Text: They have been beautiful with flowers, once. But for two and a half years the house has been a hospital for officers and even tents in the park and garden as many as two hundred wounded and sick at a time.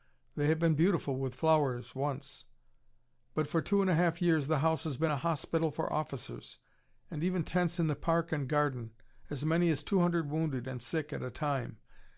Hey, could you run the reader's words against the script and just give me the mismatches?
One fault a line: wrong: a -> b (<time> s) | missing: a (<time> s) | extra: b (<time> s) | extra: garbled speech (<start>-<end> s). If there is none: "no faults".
no faults